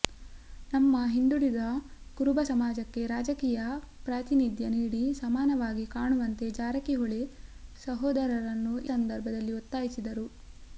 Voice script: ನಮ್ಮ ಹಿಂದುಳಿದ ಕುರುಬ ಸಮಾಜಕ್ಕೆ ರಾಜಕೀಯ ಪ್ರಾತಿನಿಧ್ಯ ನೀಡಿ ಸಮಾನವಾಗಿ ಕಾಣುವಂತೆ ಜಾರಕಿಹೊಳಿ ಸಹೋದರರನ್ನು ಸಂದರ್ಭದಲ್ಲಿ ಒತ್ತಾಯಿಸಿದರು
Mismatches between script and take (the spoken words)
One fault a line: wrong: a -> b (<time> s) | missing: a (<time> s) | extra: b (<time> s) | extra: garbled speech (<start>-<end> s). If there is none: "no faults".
no faults